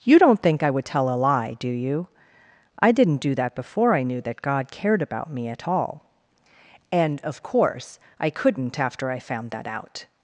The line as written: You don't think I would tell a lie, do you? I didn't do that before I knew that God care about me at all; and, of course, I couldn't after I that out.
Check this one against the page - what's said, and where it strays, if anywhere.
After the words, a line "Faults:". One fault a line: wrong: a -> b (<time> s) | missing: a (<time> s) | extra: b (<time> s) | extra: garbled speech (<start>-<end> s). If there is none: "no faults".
You don't think I would tell a lie, do you? I didn't do that before I knew that God cared about me at all; and, of course, I couldn't after I found that out.
Faults:
wrong: care -> cared (4.7 s)
extra: found (9.2 s)